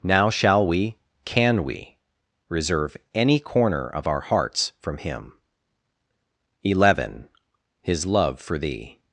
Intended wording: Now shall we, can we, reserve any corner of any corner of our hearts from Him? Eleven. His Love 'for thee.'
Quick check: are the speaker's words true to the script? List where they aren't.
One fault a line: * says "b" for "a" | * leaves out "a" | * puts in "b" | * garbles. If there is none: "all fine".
* leaves out "any corner of"